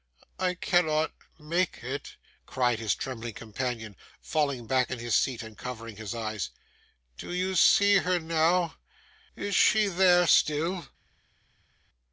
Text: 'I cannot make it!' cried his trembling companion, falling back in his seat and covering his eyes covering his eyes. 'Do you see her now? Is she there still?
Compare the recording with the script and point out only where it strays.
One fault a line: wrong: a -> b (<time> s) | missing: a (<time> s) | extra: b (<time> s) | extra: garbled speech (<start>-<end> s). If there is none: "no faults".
missing: covering his eyes (6.5 s)